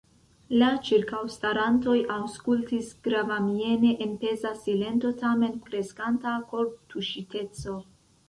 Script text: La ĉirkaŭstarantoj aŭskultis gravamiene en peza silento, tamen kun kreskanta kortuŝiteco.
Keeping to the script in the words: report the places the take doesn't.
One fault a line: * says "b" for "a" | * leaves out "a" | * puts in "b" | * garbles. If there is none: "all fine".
* leaves out "kun"